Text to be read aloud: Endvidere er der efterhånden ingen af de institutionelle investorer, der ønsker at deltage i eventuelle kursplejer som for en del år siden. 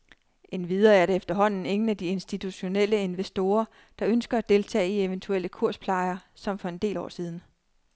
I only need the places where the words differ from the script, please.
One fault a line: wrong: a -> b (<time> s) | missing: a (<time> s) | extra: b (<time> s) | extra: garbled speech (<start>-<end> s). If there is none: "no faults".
no faults